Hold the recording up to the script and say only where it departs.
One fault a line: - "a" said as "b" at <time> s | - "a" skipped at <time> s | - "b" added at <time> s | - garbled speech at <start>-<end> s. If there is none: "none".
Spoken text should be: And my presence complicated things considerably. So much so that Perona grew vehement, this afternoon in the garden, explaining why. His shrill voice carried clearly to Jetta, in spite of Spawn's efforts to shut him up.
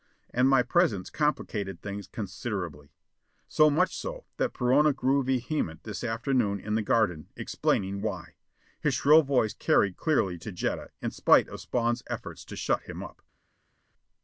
none